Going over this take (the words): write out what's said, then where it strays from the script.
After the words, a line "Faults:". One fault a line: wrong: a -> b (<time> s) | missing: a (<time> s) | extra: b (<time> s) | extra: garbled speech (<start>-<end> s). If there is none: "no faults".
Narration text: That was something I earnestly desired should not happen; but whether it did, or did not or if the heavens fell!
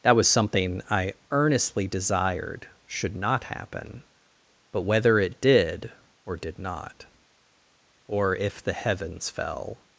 That was something I earnestly desired should not happen; but whether it did, or did not or if the heavens fell!
Faults:
no faults